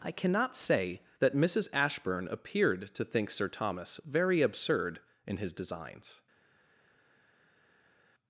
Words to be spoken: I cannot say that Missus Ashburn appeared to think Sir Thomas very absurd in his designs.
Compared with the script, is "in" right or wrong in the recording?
right